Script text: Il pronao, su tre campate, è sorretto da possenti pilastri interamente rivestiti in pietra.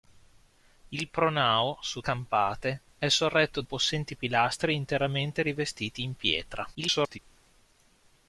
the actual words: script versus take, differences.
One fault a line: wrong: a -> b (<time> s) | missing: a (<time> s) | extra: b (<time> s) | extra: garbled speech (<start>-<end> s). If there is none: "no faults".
missing: tre (2.0 s)
missing: da (3.6 s)
extra: garbled speech (6.7-7.2 s)